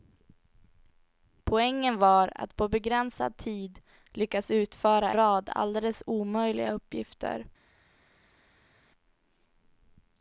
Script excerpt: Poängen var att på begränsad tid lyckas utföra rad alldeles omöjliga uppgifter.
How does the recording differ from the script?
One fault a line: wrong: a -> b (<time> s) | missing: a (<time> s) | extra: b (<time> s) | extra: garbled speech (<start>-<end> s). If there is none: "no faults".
no faults